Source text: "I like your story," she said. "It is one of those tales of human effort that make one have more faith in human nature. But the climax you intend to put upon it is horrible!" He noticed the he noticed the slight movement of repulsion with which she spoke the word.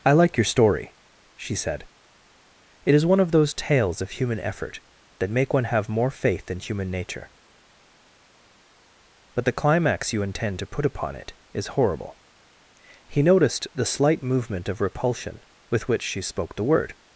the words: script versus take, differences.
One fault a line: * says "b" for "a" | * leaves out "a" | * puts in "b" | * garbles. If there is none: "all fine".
* leaves out "he noticed the"